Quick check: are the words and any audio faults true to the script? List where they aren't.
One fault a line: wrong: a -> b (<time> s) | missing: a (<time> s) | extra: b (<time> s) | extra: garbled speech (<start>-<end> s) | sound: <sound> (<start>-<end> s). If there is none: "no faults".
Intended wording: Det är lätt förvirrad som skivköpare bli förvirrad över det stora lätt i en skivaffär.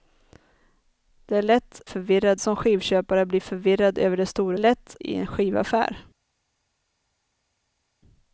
no faults